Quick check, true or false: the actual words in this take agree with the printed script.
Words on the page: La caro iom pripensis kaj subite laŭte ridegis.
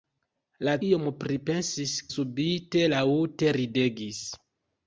false